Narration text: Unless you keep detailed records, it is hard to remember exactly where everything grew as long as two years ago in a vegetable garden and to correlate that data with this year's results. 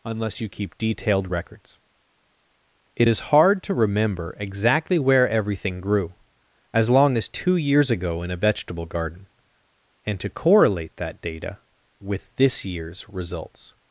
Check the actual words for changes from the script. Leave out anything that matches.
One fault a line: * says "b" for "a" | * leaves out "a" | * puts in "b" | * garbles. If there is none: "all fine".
all fine